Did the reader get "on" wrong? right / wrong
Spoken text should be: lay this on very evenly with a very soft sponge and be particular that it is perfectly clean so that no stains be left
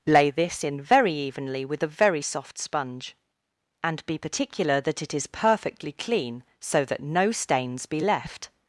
wrong